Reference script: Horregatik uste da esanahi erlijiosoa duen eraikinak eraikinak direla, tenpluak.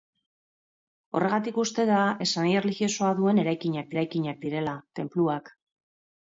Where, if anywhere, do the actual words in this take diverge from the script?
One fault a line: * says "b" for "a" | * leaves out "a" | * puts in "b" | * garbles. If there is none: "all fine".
all fine